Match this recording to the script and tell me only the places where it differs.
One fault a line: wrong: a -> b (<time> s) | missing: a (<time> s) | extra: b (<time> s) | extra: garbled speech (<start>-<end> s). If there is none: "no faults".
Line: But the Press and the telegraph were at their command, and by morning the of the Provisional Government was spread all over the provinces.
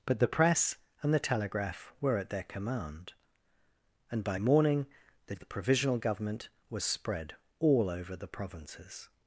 no faults